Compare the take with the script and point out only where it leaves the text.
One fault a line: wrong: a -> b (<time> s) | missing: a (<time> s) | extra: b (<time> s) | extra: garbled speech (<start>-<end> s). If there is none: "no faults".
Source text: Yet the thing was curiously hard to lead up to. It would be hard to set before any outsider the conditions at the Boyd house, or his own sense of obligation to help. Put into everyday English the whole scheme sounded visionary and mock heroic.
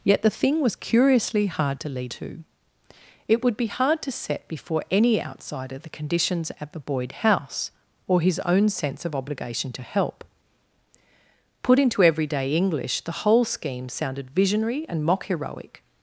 missing: up (2.1 s)